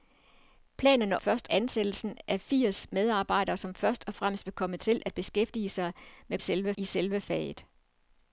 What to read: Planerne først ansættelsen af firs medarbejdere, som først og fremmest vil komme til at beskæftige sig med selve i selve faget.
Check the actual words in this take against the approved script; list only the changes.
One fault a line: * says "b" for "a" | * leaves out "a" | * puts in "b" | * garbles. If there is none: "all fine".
all fine